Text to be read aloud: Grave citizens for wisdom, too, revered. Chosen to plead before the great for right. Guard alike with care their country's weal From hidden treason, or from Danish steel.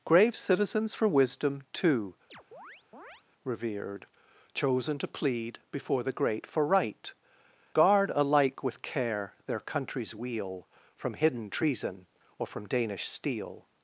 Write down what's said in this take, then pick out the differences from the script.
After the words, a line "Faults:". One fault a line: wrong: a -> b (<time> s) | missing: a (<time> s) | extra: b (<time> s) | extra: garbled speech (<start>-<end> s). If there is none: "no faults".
Grave citizens for wisdom, too, revered. Chosen to plead before the great for right. Guard alike with care their country's weal From hidden treason, or from Danish steel.
Faults:
no faults